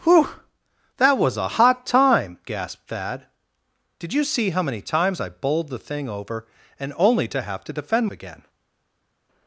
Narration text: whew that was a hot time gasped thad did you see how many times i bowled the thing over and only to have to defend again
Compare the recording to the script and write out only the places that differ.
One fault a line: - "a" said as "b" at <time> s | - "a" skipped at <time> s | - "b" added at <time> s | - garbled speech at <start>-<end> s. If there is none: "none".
none